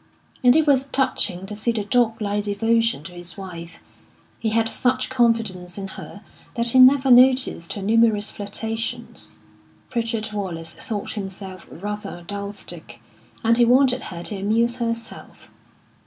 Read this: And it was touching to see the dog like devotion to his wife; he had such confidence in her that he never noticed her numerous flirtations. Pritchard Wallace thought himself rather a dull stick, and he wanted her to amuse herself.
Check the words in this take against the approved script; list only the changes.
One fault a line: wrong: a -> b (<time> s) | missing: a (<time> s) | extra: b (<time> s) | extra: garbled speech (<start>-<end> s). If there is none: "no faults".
no faults